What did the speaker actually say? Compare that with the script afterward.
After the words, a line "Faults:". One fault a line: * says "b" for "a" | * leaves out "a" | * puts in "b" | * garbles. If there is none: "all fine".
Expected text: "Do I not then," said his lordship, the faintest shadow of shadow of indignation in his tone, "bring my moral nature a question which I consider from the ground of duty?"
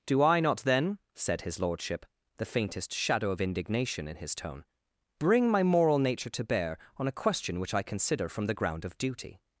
"Do I not then," said his lordship, the faintest shadow of indignation in his tone, "bring my moral nature to bear on a question which I consider from the ground of duty?"
Faults:
* leaves out "shadow of"
* puts in "to bear on"